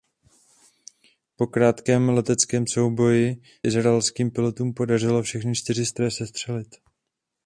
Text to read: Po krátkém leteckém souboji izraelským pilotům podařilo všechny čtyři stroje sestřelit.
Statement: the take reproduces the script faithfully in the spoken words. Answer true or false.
true